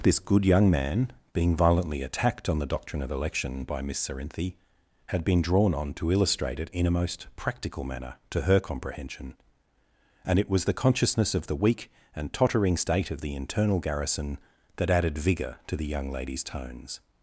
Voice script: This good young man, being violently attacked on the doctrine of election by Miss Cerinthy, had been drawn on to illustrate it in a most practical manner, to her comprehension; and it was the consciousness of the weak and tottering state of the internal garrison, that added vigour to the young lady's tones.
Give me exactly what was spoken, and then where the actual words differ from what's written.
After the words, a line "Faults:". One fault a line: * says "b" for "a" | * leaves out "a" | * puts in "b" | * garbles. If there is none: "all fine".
This good young man, being violently attacked on the doctrine of election by Miss Cerinthy, had been drawn on to illustrate it in a most practical manner, to her comprehension; and it was the consciousness of the weak and tottering state of the internal garrison, that added vigour to the young lady's tones.
Faults:
all fine